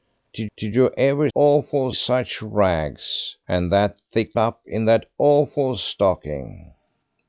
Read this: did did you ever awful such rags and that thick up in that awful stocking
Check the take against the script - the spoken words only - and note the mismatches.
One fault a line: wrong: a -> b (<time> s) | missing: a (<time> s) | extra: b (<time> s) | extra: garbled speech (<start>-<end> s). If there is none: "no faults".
no faults